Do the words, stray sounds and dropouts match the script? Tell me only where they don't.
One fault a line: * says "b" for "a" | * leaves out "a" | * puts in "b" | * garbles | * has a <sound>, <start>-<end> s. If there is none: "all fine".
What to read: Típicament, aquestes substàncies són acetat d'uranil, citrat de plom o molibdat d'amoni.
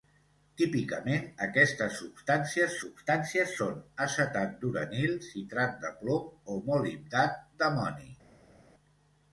* puts in "substàncies"